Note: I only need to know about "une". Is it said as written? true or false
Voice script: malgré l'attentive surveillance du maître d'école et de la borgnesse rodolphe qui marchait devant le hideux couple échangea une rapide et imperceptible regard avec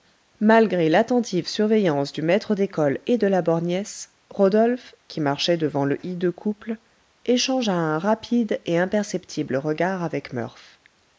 false